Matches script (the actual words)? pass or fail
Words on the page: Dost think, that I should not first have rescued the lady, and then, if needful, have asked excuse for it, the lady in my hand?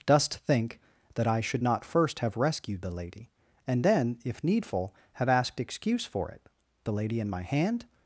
pass